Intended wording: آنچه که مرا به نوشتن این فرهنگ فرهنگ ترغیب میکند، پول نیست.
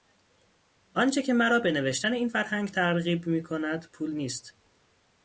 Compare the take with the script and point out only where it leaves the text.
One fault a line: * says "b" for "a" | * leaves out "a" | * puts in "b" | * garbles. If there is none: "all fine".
* leaves out "فرهنگ"